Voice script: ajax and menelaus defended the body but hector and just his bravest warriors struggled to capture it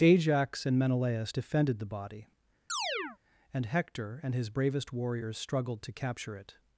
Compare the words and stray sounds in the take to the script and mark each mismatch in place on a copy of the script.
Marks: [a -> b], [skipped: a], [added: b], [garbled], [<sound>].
ajax and menelaus defended the body [chirp] [but -> and] hector and [skipped: just] his bravest warriors struggled to capture it